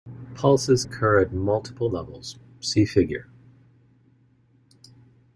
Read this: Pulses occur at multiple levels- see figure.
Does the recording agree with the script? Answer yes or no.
yes